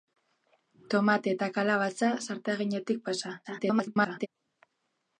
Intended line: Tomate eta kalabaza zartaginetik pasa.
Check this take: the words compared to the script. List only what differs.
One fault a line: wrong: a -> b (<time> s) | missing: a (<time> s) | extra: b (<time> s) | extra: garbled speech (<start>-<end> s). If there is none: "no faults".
extra: garbled speech (3.4-4.3 s)